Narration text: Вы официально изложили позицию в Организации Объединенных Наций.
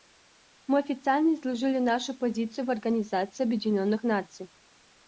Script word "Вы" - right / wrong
wrong